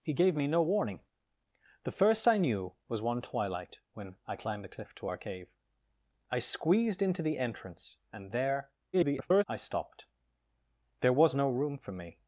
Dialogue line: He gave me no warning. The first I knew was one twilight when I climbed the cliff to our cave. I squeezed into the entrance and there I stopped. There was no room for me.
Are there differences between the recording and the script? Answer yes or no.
yes